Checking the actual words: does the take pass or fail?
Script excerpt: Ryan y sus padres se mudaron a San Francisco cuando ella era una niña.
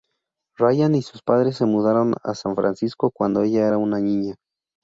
pass